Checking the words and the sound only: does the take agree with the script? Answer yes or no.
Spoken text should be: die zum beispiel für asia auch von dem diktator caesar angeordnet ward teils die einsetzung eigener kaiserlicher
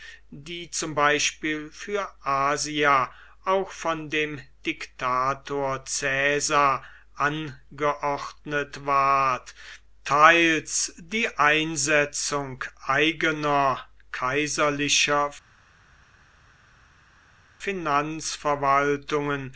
yes